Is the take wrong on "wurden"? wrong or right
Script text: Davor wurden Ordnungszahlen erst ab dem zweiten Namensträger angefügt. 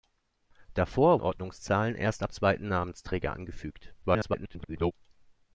wrong